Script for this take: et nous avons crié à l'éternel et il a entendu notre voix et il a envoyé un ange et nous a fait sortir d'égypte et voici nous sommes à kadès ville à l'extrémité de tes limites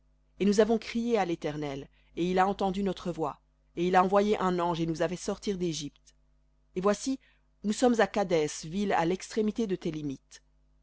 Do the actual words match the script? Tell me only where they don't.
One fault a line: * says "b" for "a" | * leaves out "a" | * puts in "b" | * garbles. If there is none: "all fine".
all fine